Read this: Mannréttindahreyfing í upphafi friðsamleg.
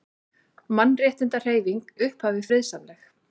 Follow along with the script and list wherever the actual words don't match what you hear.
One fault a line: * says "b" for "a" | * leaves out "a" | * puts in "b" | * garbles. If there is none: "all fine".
all fine